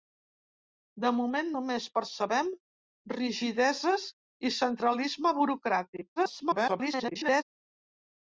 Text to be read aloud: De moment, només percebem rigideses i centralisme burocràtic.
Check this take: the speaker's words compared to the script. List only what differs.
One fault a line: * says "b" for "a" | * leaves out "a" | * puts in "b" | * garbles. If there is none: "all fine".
* garbles